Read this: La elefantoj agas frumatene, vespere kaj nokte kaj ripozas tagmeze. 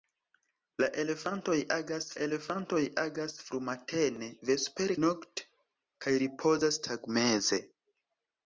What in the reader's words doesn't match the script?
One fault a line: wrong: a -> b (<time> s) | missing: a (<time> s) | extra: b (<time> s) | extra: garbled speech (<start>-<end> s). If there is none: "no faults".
extra: elefantoj agas (2.2 s)
missing: kaj (5.0 s)